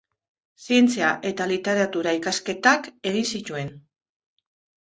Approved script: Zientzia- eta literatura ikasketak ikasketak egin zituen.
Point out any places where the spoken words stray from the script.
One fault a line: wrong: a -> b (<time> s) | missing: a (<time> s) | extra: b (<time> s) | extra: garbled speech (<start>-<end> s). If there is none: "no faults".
missing: ikasketak (2.9 s)